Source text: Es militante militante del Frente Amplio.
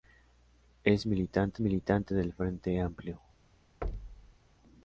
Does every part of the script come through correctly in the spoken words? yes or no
yes